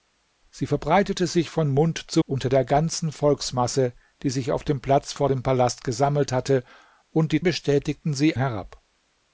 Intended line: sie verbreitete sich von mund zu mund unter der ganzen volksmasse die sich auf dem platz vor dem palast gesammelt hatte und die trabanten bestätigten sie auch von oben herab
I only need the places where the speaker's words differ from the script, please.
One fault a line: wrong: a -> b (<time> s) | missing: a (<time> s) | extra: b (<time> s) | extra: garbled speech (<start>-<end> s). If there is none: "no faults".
missing: mund (2.2 s)
missing: trabanten (7.4 s)
missing: auch von oben (8.4 s)